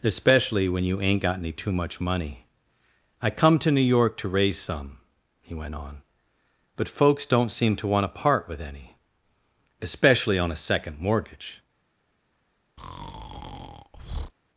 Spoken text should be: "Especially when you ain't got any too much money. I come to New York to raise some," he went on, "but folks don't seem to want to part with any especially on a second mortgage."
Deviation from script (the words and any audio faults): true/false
true